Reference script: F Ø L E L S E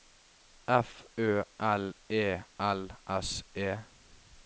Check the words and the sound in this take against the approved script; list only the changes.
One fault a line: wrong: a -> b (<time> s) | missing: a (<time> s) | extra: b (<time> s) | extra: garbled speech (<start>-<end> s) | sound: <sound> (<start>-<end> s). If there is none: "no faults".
no faults